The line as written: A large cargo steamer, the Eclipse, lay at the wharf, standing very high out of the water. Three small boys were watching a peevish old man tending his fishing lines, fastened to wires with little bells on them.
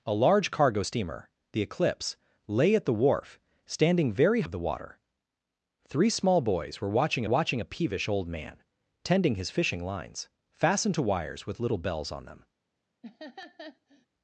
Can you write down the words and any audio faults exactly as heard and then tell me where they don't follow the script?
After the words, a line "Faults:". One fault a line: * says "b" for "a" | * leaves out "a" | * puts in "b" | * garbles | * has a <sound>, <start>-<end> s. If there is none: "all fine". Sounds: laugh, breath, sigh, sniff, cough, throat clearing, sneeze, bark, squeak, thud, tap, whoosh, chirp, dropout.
A large cargo steamer, the Eclipse, lay at the wharf, standing very of the water. Three small boys were watching watching a peevish old man tending his fishing lines, fastened to wires with little bells on them.
Faults:
* leaves out "high out"
* puts in "watching"
* has a laugh, 13.0-14.1 s